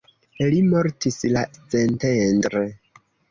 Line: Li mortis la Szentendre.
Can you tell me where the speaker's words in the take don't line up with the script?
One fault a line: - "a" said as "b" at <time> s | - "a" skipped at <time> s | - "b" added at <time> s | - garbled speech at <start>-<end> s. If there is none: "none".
none